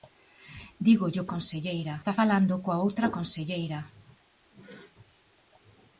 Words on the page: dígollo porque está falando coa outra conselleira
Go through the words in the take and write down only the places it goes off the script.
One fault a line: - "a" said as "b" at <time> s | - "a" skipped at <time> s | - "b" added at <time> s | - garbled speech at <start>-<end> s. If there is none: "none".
- "porque" said as "conselleira" at 1.3 s